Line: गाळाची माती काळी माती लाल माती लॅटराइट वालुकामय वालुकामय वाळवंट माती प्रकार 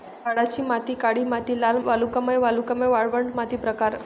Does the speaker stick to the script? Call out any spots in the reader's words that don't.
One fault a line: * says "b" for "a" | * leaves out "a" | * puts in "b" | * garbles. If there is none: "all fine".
* leaves out "माती लॅटराइट"